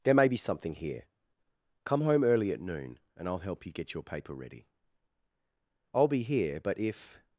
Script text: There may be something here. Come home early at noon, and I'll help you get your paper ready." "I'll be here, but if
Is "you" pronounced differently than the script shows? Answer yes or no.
no